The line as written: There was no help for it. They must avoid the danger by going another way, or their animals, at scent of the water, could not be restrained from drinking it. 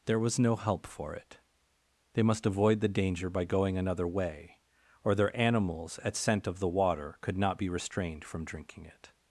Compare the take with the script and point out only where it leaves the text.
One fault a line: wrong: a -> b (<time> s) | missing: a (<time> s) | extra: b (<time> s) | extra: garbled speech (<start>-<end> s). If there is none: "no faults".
no faults